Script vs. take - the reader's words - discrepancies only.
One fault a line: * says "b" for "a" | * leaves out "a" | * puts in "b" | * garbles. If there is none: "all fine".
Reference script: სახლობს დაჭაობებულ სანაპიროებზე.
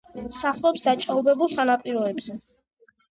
all fine